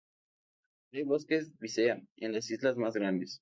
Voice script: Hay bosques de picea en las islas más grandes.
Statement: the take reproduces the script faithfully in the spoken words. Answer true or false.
false